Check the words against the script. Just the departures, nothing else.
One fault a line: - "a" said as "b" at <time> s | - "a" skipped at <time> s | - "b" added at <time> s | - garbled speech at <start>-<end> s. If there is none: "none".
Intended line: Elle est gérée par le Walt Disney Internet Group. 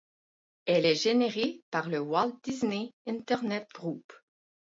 none